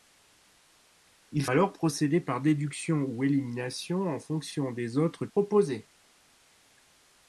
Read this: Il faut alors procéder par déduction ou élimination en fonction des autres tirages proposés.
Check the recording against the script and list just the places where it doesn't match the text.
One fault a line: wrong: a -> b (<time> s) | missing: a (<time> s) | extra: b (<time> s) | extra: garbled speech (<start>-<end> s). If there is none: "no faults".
missing: faut (1.4 s)
missing: tirages (5.3 s)